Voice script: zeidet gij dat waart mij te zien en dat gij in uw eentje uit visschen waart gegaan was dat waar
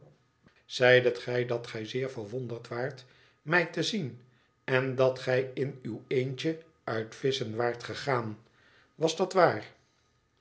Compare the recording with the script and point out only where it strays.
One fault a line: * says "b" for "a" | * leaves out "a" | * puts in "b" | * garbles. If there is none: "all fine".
* puts in "gij zeer verwonderd"